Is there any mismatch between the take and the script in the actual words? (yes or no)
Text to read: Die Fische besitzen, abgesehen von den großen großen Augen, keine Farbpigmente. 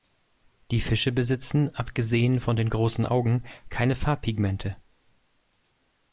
yes